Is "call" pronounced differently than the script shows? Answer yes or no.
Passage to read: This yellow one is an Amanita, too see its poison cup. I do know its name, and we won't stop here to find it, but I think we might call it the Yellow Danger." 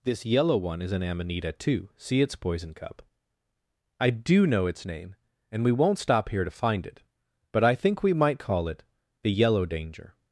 no